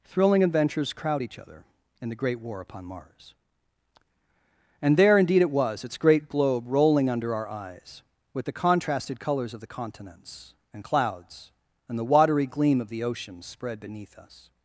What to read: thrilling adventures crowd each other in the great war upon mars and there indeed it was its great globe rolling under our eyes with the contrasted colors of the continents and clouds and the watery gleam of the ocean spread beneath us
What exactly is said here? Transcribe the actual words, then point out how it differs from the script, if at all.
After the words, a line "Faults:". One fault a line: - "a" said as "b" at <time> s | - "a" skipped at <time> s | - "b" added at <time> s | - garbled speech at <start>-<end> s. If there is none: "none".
thrilling adventures crowd each other in the great war upon mars and there indeed it was its great globe rolling under our eyes with the contrasted colors of the continents and clouds and the watery gleam of the ocean spread beneath us
Faults:
none